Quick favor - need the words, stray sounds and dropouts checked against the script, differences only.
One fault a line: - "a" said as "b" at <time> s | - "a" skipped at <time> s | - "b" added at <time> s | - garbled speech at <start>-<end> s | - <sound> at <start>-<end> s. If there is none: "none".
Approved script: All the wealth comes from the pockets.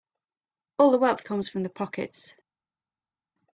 none